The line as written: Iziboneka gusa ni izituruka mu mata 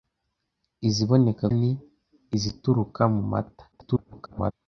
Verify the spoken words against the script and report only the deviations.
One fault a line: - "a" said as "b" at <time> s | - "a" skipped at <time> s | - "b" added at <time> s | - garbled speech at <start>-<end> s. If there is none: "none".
- "gusa" skipped at 1.4 s
- garbled speech at 3.7-4.5 s